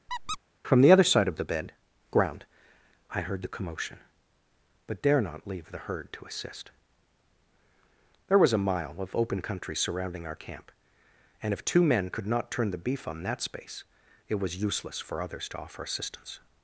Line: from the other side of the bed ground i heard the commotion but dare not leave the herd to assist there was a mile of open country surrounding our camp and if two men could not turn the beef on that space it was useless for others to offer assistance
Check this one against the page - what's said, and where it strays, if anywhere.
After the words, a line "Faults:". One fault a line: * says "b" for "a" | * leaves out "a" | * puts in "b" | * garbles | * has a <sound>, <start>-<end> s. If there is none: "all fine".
from the other side of the bed ground i heard the commotion but dare not leave the herd to assist there was a mile of open country surrounding our camp and if two men could not turn the beef on that space it was useless for others to offer assistance
Faults:
* has a squeak, 0.1-0.4 s